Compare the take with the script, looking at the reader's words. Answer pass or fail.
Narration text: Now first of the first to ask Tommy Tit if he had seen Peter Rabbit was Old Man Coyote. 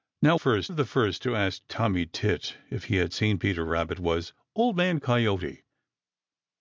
pass